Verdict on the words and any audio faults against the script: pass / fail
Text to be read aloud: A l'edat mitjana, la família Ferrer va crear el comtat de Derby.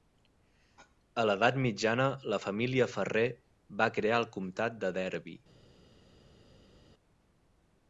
pass